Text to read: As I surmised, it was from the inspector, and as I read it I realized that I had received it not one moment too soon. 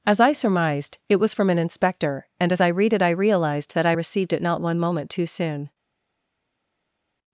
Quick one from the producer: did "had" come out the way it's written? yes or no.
no